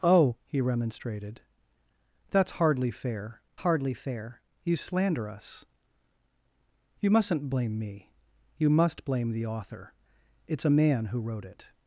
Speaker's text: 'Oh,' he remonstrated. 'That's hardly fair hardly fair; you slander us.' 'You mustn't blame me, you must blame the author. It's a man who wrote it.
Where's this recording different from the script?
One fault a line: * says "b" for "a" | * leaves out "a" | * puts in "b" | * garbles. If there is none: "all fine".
all fine